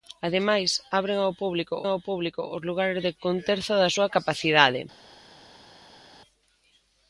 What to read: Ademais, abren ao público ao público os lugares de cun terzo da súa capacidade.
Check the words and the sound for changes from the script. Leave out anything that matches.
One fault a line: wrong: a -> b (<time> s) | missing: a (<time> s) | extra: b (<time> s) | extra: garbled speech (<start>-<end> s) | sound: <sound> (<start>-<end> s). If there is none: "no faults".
no faults